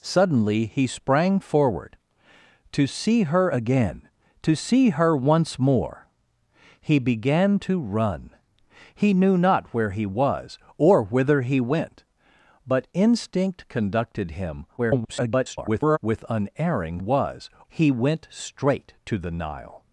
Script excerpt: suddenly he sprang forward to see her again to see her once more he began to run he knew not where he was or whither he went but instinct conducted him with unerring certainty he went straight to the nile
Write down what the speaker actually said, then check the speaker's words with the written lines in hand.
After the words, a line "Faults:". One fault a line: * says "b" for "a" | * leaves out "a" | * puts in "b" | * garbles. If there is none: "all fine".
suddenly he sprang forward to see her again to see her once more he began to run he knew not where he was or whither he went but instinct conducted him [garbled] with unerring was he went straight to the nile
Faults:
* garbles
* says "was" for "certainty"